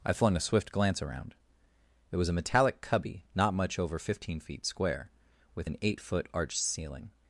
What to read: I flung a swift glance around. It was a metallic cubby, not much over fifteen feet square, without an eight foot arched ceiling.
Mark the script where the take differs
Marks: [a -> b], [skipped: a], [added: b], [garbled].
I flung a swift glance around. It was a metallic cubby, not much over fifteen feet square, [without -> with] an eight foot arched ceiling.